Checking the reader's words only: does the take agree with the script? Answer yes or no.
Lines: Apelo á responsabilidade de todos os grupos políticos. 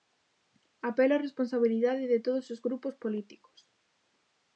yes